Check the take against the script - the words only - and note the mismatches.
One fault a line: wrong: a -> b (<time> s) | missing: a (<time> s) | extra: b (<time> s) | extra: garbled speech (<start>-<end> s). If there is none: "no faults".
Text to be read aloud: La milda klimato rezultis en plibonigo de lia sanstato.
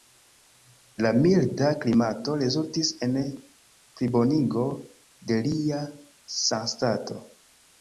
no faults